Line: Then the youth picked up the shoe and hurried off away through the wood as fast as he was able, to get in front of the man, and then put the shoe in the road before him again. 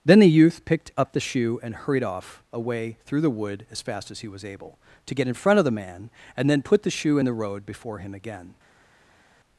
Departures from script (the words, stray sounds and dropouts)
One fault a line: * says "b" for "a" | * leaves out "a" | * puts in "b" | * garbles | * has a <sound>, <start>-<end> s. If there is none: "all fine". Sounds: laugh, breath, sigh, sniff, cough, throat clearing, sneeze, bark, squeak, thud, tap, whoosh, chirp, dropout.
all fine